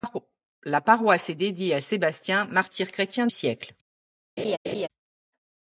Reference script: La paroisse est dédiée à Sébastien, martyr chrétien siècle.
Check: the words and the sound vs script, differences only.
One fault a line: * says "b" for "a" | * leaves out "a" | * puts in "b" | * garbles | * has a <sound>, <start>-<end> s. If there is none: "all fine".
* has a laugh, 4.4-4.9 s